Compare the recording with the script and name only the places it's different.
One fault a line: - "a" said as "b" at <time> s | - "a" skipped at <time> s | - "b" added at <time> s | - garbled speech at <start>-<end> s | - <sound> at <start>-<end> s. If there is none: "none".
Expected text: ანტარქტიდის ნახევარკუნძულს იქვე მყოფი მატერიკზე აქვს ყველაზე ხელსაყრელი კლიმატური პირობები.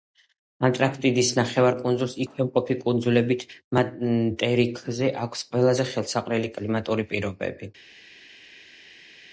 - "კუნძულებით" added at 2.8 s